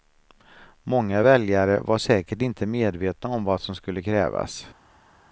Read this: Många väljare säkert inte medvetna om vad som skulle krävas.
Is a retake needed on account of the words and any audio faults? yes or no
yes